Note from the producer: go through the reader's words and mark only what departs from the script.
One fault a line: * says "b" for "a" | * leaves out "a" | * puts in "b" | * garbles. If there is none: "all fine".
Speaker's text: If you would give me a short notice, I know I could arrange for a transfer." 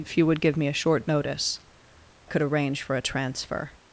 * leaves out "I know I"